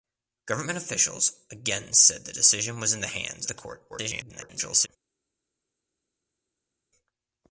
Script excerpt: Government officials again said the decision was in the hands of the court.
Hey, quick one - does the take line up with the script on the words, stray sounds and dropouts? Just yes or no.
no